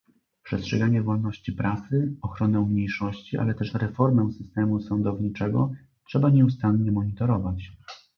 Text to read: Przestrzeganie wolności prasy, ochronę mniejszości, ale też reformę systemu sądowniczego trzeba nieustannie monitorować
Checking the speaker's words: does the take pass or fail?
pass